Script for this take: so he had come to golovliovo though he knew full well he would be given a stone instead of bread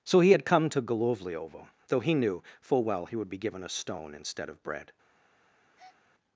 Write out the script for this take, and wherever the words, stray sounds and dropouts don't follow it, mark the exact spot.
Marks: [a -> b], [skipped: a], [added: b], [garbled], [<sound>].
so he had come to golovliovo though he knew full well he would be given a stone instead of bread [breath]